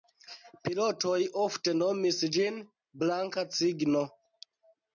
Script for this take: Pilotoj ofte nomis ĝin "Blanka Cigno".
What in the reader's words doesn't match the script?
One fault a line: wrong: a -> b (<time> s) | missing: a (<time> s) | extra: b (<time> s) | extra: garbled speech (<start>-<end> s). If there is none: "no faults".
no faults